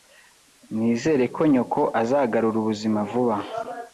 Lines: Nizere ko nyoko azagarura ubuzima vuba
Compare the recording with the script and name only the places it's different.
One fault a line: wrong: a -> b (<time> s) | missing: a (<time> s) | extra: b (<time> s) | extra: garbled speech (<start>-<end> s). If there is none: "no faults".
no faults